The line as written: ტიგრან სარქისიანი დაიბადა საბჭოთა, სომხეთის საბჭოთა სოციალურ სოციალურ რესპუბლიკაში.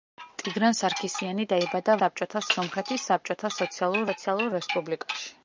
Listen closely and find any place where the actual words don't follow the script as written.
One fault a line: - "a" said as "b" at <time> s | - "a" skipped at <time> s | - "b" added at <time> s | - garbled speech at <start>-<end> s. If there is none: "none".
none